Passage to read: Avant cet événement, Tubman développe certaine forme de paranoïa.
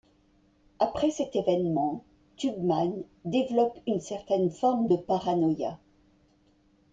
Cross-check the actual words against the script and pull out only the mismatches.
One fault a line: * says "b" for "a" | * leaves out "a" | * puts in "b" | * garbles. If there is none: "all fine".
* says "Après" for "Avant"
* puts in "une"